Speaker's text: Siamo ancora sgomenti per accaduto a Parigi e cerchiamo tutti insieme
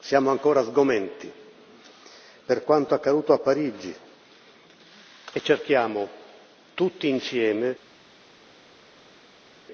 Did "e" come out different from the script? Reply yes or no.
no